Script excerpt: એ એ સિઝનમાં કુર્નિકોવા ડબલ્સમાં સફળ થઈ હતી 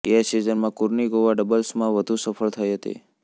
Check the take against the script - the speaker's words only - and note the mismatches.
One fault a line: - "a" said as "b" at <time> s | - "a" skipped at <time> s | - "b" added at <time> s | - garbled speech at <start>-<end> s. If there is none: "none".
- "એ" skipped at 0.2 s
- "વધુ" added at 1.9 s